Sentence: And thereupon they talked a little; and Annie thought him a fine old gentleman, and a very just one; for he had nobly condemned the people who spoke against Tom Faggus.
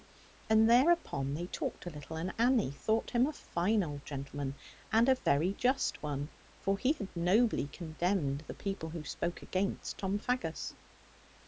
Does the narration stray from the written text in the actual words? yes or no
no